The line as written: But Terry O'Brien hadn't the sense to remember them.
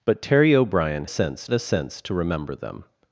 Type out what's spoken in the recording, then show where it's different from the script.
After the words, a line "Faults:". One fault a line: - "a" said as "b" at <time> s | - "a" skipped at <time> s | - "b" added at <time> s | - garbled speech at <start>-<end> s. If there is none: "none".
But Terry O'Brien sense the sense to remember them.
Faults:
- "hadn't" said as "sense" at 1.1 s